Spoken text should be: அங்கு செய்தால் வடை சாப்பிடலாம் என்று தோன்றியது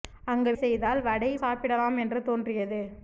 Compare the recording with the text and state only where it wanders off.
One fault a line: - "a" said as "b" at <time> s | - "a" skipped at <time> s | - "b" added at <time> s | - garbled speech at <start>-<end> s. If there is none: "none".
none